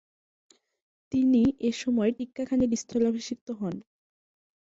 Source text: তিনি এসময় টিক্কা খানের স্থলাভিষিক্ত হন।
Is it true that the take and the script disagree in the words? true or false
false